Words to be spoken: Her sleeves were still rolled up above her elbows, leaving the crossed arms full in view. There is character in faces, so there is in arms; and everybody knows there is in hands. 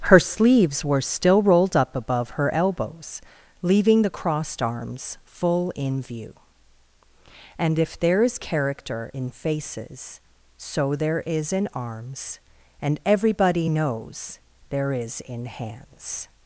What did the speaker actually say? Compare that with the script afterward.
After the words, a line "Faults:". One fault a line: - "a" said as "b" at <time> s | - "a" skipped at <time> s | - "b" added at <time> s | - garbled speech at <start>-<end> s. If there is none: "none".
Her sleeves were still rolled up above her elbows, leaving the crossed arms full in view. And if there is character in faces, so there is in arms; and everybody knows there is in hands.
Faults:
- "And if" added at 7.6 s